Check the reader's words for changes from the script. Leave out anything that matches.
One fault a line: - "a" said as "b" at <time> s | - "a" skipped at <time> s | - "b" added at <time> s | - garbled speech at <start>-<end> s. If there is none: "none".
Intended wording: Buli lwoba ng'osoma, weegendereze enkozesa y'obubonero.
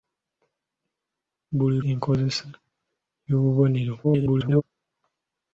- "lwoba ng'osoma weegendereze" skipped at 1.8 s
- garbled speech at 4.0-4.6 s